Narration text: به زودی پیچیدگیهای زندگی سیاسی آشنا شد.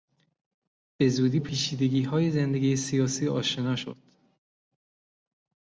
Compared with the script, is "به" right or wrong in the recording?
right